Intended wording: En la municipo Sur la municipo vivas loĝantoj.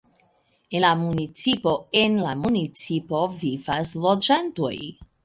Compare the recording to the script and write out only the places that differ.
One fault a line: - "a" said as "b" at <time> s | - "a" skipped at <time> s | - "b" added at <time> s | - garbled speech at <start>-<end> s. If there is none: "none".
- "Sur" said as "En" at 2.0 s